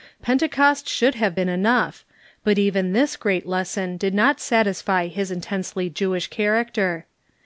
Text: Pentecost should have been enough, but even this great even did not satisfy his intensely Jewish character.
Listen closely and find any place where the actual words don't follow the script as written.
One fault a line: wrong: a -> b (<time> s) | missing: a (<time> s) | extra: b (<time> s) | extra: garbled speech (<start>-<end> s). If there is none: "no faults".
wrong: even -> lesson (3.5 s)